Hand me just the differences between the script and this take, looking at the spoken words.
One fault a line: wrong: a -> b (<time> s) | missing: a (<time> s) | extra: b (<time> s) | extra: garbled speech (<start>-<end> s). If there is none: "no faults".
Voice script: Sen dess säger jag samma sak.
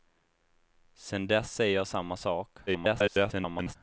extra: garbled speech (2.7-3.8 s)